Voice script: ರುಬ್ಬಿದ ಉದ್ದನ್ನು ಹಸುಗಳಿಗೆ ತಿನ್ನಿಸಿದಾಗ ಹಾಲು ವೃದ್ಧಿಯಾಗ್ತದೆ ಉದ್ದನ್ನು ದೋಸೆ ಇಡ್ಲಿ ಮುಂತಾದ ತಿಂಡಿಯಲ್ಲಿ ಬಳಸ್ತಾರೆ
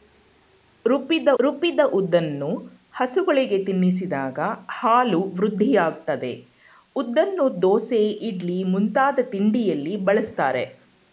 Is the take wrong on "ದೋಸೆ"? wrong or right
right